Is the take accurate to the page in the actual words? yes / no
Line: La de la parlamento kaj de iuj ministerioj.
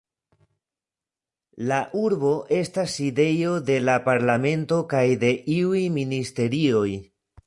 no